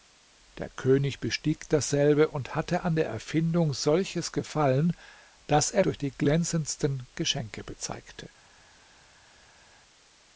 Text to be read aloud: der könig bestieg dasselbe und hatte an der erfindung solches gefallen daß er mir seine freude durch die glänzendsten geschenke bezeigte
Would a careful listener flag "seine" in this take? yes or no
yes